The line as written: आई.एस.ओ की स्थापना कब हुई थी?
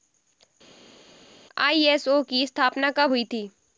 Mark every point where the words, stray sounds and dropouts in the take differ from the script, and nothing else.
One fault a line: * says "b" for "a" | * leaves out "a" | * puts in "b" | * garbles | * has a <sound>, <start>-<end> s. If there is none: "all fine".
all fine